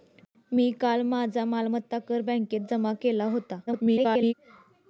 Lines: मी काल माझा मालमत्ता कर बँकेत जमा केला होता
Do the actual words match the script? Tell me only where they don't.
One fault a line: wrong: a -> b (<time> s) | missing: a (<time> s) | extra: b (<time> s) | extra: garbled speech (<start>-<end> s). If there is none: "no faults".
extra: garbled speech (3.7-4.3 s)